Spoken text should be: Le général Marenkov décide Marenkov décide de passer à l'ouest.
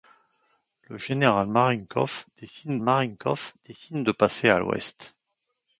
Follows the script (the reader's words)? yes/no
yes